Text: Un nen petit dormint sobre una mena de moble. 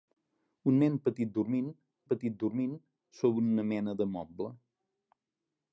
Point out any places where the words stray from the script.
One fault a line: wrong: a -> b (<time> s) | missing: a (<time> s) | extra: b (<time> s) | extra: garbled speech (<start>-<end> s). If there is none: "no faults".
extra: petit dormint (2.1 s)